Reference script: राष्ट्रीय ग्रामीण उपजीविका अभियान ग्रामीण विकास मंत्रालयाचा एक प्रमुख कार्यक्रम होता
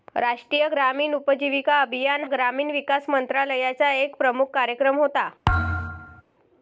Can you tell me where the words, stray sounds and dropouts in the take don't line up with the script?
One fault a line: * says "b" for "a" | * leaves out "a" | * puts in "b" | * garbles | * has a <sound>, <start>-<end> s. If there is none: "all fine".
* has a thud, 5.5-6.2 s